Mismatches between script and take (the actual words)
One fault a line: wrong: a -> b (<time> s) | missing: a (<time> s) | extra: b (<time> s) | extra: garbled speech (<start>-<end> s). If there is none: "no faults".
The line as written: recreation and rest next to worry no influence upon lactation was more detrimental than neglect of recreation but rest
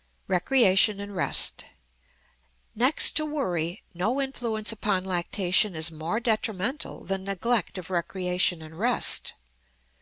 wrong: was -> is (5.8 s)
wrong: but -> and (8.6 s)